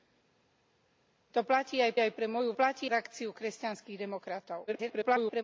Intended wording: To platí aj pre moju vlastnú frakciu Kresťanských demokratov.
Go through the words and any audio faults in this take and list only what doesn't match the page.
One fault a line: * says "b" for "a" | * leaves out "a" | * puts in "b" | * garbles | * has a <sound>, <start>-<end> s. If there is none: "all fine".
* puts in "aj"
* says "platí" for "vlastnú"
* garbles